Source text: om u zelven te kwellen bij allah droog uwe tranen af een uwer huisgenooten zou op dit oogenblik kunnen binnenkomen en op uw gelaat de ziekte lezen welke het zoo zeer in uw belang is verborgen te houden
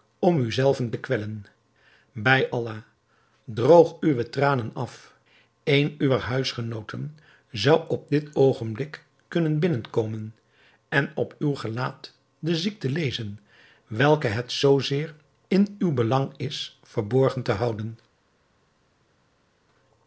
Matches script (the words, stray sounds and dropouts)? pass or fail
pass